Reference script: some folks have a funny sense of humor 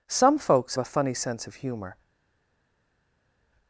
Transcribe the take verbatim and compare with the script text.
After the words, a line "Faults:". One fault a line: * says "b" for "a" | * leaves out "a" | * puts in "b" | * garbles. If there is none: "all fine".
some folks a funny sense of humor
Faults:
* leaves out "have"